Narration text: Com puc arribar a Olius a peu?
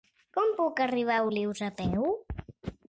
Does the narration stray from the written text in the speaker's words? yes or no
no